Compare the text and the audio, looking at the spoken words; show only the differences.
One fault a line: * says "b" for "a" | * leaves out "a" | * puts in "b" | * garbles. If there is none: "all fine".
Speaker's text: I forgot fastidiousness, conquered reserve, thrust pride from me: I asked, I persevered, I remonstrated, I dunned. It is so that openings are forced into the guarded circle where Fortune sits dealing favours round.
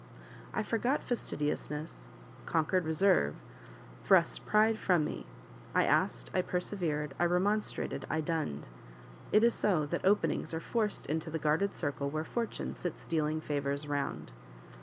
all fine